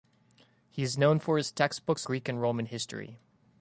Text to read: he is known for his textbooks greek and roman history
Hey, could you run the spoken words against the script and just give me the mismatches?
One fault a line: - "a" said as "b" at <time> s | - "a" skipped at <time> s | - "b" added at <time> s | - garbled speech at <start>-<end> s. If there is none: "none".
none